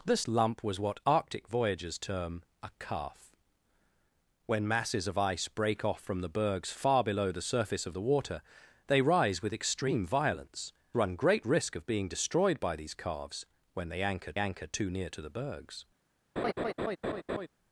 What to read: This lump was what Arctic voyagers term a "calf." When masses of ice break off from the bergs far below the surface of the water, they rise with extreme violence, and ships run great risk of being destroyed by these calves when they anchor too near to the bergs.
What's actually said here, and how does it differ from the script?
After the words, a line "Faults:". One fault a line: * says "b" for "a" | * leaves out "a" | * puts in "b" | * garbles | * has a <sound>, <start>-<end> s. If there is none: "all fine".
This lump was what Arctic voyagers term a "calf." When masses of ice break off from the bergs far below the surface of the water, they rise with extreme violence, run great risk of being destroyed by these calves when they anchor anchor too near to the bergs.
Faults:
* leaves out "and ships"
* puts in "anchor"
* has a laugh, 16.4-17.5 s